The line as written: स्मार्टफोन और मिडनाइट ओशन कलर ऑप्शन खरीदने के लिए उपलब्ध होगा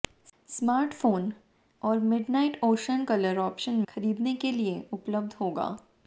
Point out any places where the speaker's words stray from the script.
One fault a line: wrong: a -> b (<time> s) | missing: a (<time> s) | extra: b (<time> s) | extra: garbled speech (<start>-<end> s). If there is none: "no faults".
no faults